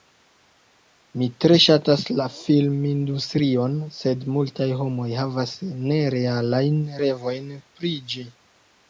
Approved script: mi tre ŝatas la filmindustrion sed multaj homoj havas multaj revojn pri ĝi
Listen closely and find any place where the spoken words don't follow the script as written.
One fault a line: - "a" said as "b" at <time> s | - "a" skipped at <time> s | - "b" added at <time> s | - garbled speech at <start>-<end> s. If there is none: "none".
- "multaj" said as "nerealajn" at 5.9 s